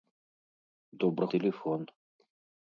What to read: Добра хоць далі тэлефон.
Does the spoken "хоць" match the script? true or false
false